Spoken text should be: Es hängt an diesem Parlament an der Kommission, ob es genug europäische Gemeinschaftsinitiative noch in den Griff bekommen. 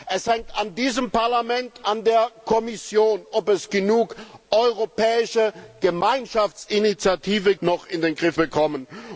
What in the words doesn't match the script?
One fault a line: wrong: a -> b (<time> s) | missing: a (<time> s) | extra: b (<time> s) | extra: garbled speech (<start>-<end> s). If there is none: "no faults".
no faults